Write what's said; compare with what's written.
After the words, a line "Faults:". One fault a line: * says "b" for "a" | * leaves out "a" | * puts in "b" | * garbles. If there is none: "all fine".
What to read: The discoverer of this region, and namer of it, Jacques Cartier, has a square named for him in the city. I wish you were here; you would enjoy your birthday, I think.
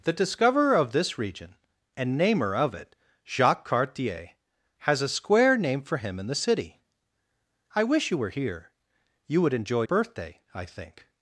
The discoverer of this region, and namer of it, Jacques Cartier, has a square named for him in the city. I wish you were here; you would enjoy birthday, I think.
Faults:
* leaves out "your"